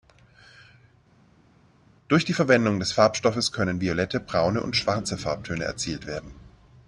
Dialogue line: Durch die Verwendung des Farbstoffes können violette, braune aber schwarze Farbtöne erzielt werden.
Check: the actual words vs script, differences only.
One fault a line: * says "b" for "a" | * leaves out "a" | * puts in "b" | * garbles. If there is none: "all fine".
* says "und" for "aber"